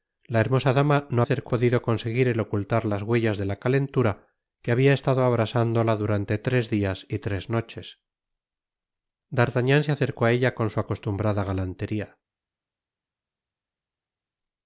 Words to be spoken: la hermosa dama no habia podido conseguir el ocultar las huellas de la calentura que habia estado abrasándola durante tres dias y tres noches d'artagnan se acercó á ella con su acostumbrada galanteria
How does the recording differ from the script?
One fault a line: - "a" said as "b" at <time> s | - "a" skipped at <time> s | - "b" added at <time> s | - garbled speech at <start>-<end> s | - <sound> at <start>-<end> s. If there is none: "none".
- "habia" said as "acercó" at 1.2 s